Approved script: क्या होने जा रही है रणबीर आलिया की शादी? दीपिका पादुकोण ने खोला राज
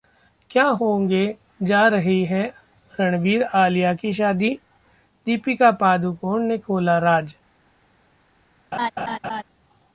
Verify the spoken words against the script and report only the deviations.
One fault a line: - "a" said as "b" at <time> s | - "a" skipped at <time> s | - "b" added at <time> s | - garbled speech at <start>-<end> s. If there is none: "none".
none